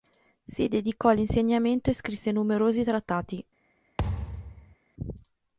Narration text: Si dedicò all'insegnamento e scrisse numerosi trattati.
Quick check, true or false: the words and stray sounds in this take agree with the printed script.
false